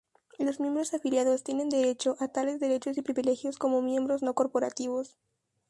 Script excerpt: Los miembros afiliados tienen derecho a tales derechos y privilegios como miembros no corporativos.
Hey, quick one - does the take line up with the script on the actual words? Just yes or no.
yes